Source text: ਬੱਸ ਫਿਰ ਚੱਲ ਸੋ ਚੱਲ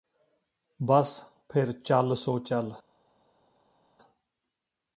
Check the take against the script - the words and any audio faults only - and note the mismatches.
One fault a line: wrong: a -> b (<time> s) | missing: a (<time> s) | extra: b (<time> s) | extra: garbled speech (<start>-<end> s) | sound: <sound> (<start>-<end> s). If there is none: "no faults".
no faults